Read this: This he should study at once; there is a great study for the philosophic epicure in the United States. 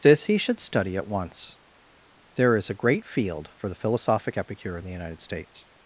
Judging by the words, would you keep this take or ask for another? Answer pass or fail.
fail